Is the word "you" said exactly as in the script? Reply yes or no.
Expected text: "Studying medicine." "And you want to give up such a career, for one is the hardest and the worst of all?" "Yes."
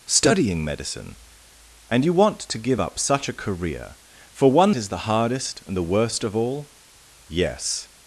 yes